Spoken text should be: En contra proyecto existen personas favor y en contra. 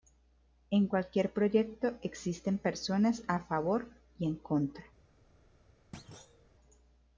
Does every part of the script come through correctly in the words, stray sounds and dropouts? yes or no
no